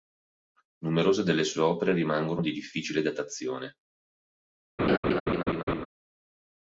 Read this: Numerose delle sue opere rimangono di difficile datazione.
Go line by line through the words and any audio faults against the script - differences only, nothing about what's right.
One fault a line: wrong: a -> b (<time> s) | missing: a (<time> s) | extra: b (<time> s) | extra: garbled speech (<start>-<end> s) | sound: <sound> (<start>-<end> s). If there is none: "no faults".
sound: laugh (4.8-5.9 s)